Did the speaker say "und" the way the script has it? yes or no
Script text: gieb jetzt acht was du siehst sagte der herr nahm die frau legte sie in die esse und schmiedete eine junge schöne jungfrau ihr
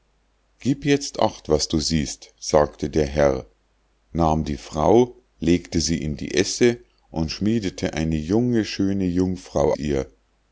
yes